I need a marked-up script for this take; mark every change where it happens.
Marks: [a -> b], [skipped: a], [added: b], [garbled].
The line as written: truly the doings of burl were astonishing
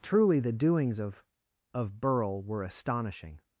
truly the doings of [added: of] burl were astonishing